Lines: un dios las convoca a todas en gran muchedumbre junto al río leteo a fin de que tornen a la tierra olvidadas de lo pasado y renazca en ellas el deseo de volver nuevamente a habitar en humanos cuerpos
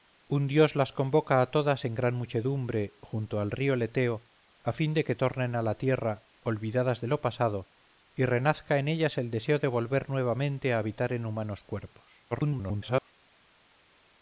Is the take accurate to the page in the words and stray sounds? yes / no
no